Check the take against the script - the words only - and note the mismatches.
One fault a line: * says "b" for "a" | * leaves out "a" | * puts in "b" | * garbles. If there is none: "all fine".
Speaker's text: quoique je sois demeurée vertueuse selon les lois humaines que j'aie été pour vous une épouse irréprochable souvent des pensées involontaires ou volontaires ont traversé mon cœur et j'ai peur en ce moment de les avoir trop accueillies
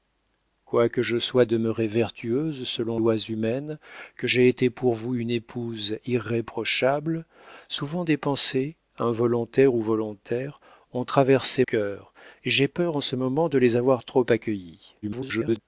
* leaves out "les"
* leaves out "mon"
* garbles